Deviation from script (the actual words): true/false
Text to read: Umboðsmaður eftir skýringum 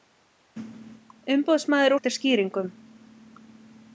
false